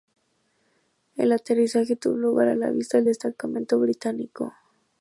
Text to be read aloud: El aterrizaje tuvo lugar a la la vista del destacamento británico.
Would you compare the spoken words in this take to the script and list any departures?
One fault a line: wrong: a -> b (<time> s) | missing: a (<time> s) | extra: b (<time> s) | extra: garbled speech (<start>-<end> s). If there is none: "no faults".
missing: la (2.7 s)